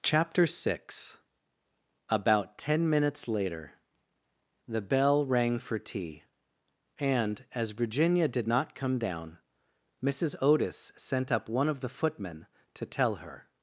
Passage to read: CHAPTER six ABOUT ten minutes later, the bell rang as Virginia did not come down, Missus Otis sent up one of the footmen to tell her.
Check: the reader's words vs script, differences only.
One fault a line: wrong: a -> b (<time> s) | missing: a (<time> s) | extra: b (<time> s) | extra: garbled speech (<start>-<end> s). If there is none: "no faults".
extra: for tea and (5.6 s)